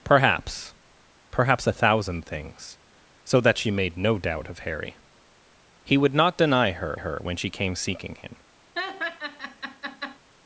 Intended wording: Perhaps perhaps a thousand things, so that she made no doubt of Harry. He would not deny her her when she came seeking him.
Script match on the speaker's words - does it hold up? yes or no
yes